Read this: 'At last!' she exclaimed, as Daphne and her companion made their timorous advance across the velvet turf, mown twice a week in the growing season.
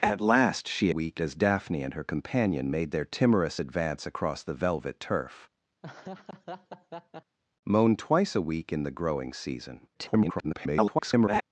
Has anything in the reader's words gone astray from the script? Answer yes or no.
yes